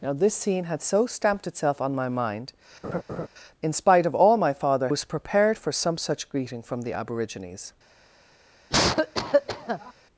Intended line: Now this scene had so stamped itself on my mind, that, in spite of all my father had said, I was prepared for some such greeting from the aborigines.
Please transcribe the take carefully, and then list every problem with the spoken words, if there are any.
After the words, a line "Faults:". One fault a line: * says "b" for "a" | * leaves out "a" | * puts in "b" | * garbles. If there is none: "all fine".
Now this scene had so stamped itself on my mind, in spite of all my father was prepared for some such greeting from the aborigines.
Faults:
* leaves out "that"
* leaves out "had said I"